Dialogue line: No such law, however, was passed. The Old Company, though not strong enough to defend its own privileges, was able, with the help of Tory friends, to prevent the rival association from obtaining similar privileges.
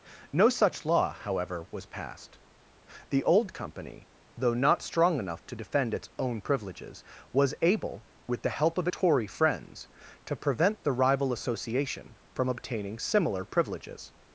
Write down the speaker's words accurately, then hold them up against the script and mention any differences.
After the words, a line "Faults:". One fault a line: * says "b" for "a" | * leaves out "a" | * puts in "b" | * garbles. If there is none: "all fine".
No such law, however, was passed. The Old Company, though not strong enough to defend its own privileges, was able, with the help of Tory friends, to prevent the rival association from obtaining similar privileges.
Faults:
all fine